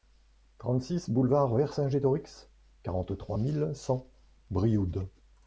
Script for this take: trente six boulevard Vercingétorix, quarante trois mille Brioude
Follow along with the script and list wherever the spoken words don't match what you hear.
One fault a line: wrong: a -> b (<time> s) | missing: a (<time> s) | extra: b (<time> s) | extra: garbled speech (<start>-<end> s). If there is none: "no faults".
extra: cent (3.7 s)